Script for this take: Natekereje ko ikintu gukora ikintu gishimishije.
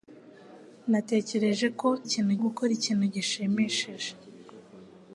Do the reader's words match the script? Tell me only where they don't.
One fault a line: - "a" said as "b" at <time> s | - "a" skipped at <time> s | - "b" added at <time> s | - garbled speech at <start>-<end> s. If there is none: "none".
none